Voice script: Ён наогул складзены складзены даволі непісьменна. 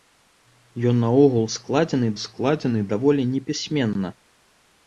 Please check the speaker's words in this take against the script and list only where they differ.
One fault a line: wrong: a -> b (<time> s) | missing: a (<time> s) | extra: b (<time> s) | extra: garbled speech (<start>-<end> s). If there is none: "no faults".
no faults